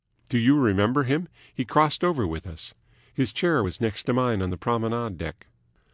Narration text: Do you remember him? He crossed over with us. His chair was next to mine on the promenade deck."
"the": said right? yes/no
yes